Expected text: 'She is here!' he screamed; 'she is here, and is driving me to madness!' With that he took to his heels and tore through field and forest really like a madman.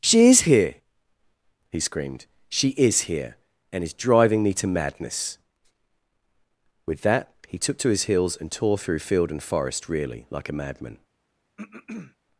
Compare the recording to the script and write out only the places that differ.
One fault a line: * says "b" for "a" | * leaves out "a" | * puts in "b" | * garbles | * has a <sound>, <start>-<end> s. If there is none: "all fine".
* has a throat clearing, 11.6-12.2 s